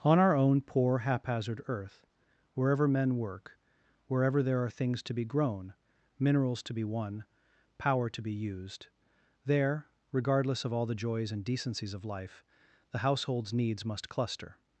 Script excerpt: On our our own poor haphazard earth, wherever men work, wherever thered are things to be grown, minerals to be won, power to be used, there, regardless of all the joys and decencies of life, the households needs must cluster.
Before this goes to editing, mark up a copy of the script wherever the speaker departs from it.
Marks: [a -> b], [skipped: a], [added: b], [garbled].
On our [skipped: our] own poor haphazard earth, wherever men work, wherever [thered -> there] are things to be grown, minerals to be won, power to be used, there, regardless of all the joys and decencies of life, the households needs must cluster.